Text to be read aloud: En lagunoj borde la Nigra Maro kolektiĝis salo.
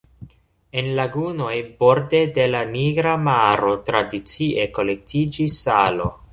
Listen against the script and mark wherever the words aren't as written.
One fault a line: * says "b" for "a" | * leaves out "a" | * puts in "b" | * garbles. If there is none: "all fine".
* puts in "de"
* puts in "tradicie"